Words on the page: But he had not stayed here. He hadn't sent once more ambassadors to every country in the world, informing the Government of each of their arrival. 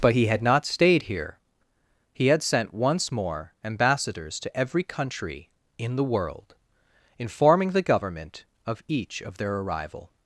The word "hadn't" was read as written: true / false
false